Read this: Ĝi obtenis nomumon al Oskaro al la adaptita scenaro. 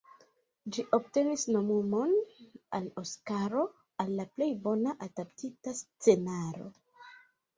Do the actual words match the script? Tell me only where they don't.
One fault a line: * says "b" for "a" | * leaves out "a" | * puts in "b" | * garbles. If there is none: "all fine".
* puts in "plej bona"